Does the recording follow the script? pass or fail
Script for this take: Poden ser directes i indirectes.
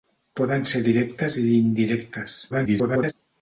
fail